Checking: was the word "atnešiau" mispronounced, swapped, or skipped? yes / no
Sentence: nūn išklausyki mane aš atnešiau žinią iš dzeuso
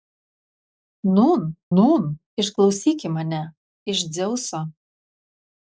yes